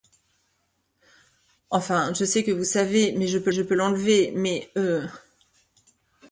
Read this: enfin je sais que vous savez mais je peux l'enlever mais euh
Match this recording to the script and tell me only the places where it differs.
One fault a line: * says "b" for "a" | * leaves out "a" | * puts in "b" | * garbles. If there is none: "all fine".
* puts in "je peux"